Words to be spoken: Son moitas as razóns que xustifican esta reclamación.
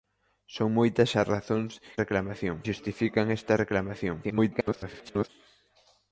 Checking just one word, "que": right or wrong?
wrong